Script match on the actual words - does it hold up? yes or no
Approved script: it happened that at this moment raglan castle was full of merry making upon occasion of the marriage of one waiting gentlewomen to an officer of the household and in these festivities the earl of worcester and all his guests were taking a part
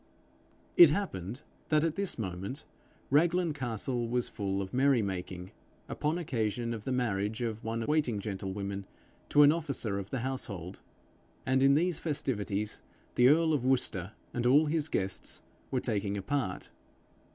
yes